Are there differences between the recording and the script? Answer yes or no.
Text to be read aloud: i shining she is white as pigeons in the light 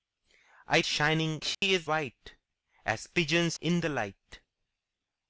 no